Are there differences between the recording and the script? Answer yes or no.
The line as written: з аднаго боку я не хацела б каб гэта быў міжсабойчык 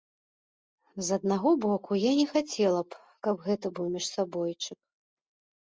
no